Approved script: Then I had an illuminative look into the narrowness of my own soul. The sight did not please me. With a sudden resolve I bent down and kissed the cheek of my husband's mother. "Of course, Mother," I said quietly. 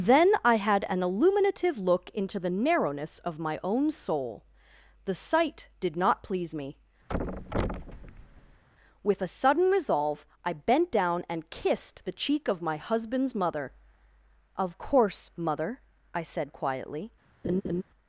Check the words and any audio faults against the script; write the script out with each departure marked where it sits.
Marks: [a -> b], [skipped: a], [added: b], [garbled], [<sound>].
Then I had an illuminative look into the narrowness of my own soul. The sight did not please me. [thud] With a sudden resolve I bent down and kissed the cheek of my husband's mother. "Of course, Mother," I said quietly. [laugh]